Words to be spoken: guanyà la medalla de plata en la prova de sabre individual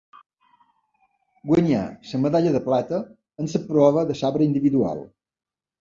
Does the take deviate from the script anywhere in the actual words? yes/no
no